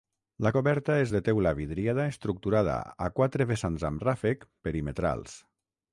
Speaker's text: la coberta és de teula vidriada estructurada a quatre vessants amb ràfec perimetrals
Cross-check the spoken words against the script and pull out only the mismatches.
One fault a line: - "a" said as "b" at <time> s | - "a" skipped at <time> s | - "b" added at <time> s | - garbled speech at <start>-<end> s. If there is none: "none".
none